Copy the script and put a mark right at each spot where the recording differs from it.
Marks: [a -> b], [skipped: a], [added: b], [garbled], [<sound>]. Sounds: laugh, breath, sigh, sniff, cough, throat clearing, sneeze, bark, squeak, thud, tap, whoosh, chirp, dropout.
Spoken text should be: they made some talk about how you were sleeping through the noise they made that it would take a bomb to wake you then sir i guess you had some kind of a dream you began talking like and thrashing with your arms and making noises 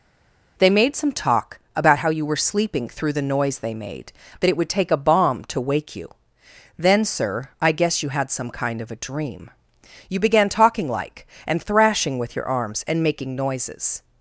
they made some talk about how you were sleeping through the noise they made that it would take a bomb to wake you then sir i guess you had some kind of a dream you began talking like and thrashing with your arms and making noises